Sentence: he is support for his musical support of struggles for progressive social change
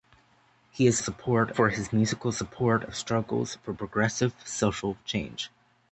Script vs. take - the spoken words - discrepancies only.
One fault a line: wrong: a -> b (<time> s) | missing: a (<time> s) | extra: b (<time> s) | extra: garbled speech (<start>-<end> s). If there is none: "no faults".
no faults